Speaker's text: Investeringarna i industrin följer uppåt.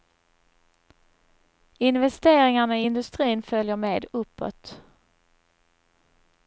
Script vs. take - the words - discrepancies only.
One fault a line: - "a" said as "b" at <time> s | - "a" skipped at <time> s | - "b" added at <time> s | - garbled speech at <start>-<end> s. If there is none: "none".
- "med" added at 3.8 s